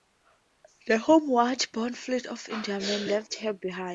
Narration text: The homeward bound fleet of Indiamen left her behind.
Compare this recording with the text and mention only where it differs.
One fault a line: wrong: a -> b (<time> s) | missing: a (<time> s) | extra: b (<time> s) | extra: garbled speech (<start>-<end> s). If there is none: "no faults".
no faults